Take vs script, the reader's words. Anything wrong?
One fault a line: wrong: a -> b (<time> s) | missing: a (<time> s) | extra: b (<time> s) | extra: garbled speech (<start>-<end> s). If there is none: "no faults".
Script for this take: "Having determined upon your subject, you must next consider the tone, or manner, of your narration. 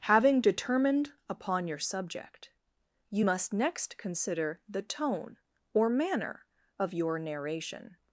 no faults